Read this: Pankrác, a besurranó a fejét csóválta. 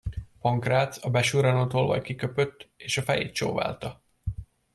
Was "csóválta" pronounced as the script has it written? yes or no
yes